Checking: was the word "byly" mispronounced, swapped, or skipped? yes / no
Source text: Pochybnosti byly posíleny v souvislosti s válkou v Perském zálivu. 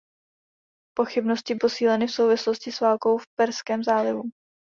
yes